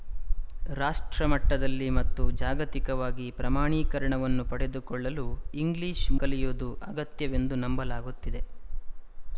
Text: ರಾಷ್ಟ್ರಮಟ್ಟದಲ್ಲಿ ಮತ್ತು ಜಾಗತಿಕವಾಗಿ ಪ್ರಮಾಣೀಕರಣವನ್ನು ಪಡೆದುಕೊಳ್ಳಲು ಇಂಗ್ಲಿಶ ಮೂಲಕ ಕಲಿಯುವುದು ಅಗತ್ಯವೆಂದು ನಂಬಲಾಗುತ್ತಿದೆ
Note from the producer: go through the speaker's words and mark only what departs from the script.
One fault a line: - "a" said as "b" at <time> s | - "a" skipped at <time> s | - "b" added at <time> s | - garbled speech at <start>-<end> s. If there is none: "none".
- "ಮೂಲಕ" skipped at 6.1 s